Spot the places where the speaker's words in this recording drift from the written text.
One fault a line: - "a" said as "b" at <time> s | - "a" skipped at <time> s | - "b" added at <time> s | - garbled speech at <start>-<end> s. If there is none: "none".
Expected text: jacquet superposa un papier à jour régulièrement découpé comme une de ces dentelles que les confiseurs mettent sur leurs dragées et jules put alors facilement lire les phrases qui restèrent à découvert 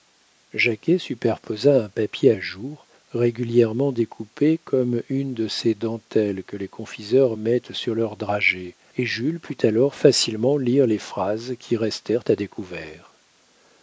none